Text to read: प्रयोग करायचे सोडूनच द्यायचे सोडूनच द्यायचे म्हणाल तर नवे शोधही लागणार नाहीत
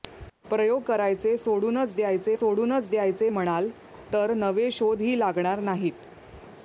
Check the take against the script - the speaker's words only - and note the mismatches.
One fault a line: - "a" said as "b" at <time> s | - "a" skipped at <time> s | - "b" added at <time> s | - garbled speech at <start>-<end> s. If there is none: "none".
none